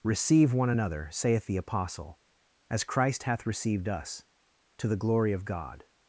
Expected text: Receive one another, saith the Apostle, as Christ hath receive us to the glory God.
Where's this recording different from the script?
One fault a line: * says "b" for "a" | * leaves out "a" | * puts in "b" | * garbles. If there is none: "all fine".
* says "received" for "receive"
* puts in "of"